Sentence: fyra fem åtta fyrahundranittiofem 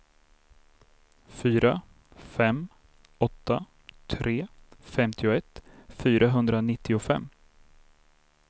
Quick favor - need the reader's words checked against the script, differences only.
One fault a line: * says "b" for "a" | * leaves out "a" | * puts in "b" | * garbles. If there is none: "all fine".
* puts in "tre femtioett"